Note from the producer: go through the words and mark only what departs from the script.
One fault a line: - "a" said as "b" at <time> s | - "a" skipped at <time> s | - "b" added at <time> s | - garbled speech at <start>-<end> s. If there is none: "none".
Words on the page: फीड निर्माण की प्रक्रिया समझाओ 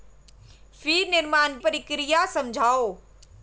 - "की" skipped at 1.6 s